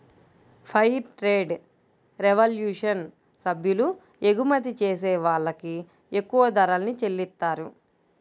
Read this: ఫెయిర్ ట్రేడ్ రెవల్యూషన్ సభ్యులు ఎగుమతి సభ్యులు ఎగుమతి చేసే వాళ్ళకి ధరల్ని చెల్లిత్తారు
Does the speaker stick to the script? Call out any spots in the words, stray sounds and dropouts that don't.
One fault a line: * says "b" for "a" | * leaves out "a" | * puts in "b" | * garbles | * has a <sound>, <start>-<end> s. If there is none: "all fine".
* leaves out "సభ్యులు ఎగుమతి"
* puts in "ఎక్కువ"